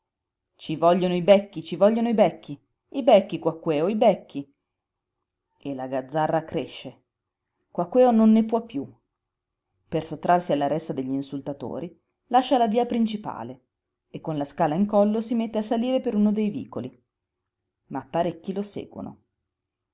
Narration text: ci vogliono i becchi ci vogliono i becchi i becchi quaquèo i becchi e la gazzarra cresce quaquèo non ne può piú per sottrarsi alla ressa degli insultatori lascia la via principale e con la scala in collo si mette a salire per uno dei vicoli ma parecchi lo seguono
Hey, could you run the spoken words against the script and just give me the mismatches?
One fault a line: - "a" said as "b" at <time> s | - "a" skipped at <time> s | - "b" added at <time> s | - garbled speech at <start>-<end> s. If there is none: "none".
none